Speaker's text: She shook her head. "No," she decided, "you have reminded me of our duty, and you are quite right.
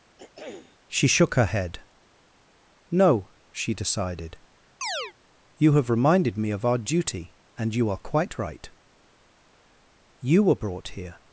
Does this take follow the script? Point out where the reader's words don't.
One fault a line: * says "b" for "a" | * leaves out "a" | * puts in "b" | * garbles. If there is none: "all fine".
* puts in "You were brought here"